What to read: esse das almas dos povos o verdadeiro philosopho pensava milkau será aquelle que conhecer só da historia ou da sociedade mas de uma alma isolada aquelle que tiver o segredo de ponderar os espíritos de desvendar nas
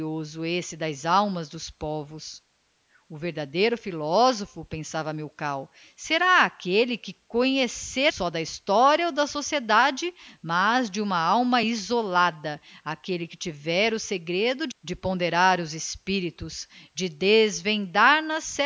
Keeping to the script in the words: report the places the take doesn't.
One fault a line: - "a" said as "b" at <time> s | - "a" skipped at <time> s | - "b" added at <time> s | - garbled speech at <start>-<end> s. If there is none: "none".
none